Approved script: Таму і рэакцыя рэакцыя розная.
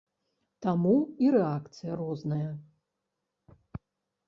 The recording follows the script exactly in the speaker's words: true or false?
false